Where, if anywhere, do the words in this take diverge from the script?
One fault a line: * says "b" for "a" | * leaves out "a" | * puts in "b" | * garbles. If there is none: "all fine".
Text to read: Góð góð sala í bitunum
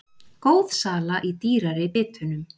* leaves out "góð"
* puts in "dýrari"